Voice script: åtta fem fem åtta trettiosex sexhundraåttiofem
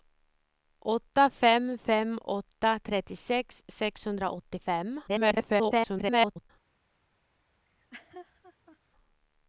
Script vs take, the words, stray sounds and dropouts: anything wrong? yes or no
yes